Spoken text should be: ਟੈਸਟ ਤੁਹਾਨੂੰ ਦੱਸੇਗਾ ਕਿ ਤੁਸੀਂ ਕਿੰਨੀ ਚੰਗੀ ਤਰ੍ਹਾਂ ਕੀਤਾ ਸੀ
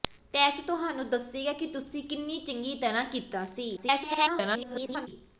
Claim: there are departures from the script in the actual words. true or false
true